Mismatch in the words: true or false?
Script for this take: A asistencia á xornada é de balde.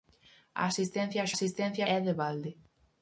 true